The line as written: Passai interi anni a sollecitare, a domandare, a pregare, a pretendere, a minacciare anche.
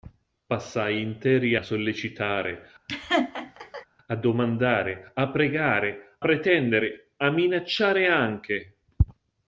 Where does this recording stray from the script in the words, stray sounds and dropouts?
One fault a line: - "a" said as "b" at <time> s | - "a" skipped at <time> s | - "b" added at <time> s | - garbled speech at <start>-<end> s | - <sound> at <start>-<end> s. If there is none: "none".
- "anni" skipped at 1.6 s
- laugh at 2.9-3.9 s
- "a" skipped at 6.2 s